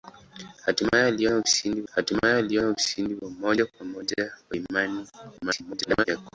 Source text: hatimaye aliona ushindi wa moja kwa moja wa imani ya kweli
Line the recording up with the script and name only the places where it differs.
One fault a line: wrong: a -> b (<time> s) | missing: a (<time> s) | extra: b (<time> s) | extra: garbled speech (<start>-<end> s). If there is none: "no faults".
extra: hatimaye aliona ushindi (1.9 s)
extra: garbled speech (5.4-6.0 s)